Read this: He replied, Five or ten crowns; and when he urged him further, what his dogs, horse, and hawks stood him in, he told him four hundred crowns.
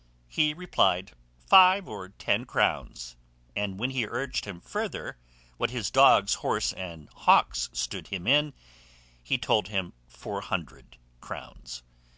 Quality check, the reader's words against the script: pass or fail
pass